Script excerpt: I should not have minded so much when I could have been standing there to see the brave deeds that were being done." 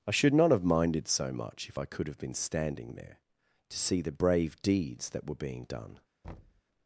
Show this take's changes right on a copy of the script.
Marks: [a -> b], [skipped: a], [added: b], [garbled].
I should not have minded so much [when -> if] I could have been standing there to see the brave deeds that were being done."